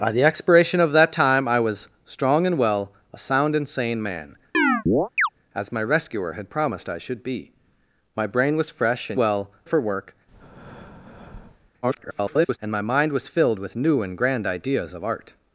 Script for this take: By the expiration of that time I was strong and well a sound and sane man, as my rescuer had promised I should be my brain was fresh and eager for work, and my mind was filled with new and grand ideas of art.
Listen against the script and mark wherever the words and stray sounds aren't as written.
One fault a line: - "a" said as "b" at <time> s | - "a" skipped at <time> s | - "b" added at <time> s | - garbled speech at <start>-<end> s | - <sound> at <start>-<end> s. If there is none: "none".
- chirp at 4.5-5.3 s
- "eager" said as "well" at 9.2 s
- breath at 10.3-11.7 s
- garbled speech at 11.8-12.6 s